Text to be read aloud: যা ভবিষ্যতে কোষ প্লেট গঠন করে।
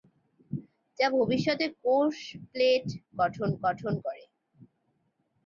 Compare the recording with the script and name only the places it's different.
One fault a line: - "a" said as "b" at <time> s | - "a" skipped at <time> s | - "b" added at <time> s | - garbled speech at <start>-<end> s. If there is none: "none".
- "গঠন" added at 3.6 s